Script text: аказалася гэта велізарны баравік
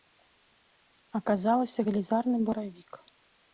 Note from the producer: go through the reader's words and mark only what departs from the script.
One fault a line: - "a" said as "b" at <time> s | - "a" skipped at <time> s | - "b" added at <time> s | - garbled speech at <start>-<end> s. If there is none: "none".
- "гэта" skipped at 1.8 s